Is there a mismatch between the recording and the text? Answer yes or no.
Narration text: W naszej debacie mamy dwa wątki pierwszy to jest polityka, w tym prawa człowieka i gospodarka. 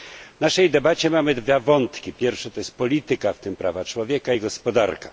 no